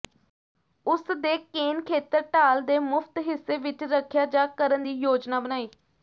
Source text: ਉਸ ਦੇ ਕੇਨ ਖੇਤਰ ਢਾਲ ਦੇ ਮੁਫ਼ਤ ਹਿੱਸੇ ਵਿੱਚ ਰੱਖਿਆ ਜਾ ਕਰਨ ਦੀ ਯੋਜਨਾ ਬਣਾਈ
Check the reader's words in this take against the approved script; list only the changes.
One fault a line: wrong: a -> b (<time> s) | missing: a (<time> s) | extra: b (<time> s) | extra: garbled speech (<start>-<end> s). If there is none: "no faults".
no faults